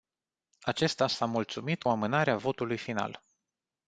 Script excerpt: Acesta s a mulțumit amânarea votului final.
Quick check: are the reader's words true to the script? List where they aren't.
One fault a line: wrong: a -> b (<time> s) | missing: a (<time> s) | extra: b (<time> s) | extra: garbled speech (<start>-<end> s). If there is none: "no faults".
no faults